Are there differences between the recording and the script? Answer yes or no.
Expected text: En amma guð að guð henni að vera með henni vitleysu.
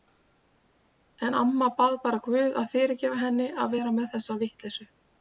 yes